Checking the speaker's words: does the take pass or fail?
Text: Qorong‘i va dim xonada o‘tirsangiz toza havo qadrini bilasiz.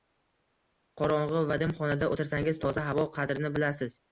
pass